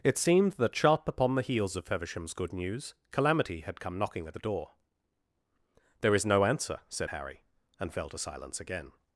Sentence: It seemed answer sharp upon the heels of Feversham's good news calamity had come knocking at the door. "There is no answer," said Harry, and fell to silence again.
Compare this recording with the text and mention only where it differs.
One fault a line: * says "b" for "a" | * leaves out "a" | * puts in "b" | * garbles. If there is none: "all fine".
* says "that" for "answer"